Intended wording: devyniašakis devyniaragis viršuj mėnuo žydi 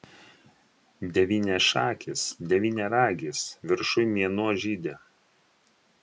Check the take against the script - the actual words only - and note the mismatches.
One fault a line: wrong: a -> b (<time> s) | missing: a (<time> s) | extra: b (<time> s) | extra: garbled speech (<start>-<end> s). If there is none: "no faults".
no faults